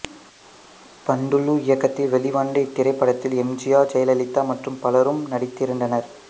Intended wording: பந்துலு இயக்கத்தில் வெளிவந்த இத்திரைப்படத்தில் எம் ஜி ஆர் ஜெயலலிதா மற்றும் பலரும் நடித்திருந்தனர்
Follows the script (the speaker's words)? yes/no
yes